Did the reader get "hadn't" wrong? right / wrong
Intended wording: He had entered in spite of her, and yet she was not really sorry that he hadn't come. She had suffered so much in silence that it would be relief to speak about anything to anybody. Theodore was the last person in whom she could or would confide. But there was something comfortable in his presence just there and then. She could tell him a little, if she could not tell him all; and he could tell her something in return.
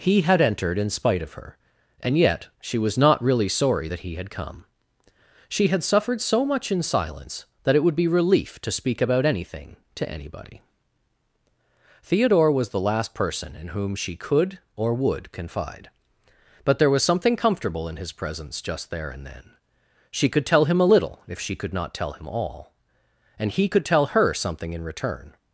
wrong